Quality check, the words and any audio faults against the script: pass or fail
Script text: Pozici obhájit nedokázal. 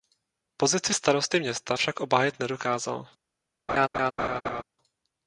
fail